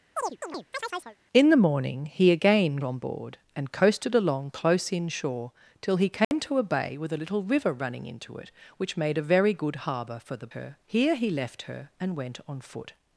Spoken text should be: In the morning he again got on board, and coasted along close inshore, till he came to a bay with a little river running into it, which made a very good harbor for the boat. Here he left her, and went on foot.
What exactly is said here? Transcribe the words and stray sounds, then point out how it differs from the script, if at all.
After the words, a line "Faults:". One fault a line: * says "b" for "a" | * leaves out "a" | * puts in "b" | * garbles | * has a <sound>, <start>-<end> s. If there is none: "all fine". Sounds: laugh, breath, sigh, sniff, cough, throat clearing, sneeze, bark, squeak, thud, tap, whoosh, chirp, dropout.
In the morning he again on board, and coasted along close inshore, till he came to a bay with a little river running into it, which made a very good harbor for the her. Here he left her, and went on foot.
Faults:
* has a chirp, 0.2-1.2 s
* leaves out "got"
* has a dropout, 6.2-6.3 s
* says "her" for "boat"